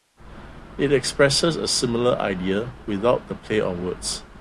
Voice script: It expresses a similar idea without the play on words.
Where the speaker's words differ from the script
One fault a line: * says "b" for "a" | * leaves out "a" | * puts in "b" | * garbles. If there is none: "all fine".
all fine